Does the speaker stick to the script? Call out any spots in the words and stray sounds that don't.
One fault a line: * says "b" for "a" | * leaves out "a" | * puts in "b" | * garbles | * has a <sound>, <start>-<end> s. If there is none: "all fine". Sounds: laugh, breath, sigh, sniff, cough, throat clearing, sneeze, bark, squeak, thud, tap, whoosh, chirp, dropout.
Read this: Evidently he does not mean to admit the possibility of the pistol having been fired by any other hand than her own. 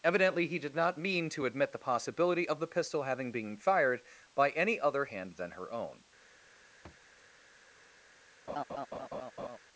* says "did" for "does"
* has a thud, 6.8-7.1 s
* has a laugh, 8.5-9.6 s